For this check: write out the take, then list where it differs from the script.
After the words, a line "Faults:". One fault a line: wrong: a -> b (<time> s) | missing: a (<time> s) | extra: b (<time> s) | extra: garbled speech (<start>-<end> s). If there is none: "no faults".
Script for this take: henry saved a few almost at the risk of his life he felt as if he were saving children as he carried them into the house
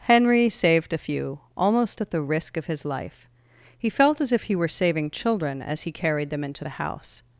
henry saved a few almost at the risk of his life he felt as if he were saving children as he carried them into the house
Faults:
no faults